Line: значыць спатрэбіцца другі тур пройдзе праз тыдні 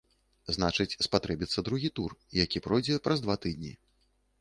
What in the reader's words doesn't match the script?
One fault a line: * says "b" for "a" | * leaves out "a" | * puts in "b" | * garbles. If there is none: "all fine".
* puts in "які"
* puts in "два"